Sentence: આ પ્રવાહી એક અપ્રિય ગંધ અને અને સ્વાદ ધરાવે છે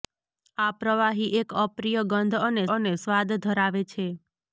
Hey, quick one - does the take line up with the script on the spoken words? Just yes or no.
yes